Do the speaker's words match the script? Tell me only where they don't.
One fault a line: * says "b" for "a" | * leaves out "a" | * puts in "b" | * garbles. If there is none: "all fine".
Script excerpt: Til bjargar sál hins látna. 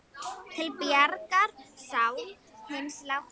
all fine